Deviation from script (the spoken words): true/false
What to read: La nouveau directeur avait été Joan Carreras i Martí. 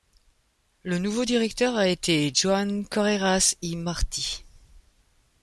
true